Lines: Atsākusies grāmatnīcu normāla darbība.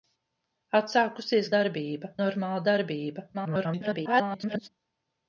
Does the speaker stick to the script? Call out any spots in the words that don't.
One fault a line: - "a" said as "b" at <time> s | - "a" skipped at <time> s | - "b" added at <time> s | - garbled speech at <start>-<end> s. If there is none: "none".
- "grāmatnīcu" said as "darbība" at 1.5 s
- garbled speech at 3.3-4.7 s